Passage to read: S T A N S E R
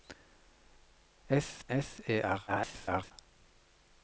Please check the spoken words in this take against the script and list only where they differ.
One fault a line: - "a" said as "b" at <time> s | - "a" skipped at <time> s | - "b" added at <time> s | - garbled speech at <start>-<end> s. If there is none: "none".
- "T A N" skipped at 1.6 s
- garbled speech at 2.5-3.1 s